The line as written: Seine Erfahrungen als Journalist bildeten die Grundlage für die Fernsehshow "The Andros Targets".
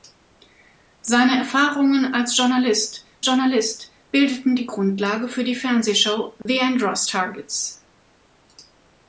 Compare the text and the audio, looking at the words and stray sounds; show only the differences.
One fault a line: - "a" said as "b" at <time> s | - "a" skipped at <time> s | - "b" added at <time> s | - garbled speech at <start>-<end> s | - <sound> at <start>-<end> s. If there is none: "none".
- "Journalist" added at 3.2 s
- dropout at 6.4-6.5 s